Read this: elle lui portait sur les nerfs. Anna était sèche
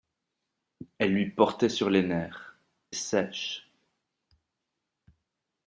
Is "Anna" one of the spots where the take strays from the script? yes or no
yes